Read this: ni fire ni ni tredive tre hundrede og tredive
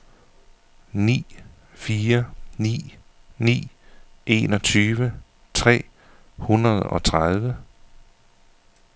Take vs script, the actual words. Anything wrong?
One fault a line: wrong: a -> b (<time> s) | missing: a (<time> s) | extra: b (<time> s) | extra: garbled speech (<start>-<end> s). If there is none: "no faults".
wrong: tredive -> enogtyve (4.3 s)